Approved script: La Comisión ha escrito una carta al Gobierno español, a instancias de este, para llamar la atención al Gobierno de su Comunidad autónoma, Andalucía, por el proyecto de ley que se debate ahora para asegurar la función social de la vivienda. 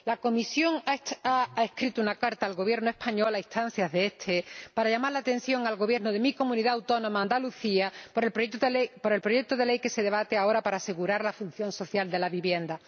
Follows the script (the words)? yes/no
no